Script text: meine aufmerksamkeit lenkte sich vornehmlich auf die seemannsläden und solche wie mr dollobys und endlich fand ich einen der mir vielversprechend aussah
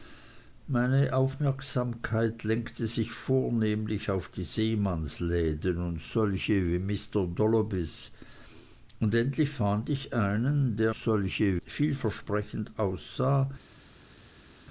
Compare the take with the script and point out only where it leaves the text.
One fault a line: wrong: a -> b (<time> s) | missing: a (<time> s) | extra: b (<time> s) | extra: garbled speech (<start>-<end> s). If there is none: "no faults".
wrong: mir -> solche (10.9 s)